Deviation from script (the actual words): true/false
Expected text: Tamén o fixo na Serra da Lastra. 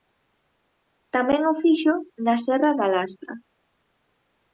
false